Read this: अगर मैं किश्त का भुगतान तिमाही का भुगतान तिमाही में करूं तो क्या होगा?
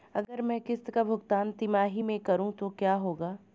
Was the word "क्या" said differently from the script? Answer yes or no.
no